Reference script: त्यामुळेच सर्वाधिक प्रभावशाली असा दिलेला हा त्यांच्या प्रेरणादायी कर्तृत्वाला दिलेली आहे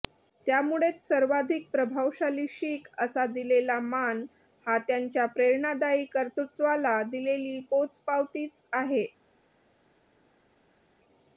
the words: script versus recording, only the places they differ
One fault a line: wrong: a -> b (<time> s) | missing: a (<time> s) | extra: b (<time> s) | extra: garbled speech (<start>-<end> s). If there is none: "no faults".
extra: शीख (2.5 s)
extra: मान (3.8 s)
extra: पोचपावतीच (7.7 s)